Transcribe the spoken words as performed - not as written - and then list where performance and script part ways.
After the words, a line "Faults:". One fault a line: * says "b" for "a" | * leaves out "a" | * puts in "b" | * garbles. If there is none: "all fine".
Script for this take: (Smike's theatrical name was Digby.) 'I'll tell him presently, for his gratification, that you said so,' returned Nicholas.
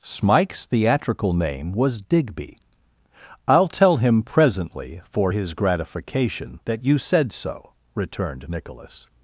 (Smike's theatrical name was Digby.) 'I'll tell him presently, for his gratification, that you said so,' returned Nicholas.
Faults:
all fine